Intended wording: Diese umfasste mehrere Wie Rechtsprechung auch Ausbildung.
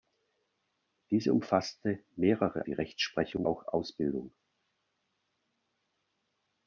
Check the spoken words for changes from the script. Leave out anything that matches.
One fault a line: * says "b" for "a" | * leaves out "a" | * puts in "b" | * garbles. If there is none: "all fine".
all fine